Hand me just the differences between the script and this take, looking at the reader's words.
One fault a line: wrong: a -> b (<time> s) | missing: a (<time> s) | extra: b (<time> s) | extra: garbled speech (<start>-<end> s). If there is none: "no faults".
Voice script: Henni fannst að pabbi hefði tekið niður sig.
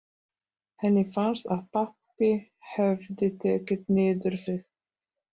no faults